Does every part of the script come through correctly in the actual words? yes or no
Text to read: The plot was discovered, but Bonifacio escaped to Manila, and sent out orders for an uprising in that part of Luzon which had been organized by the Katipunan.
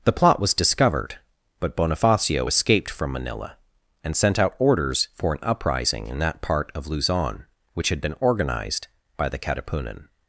no